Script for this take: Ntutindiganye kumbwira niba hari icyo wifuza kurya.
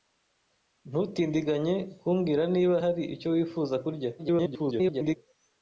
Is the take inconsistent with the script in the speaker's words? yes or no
yes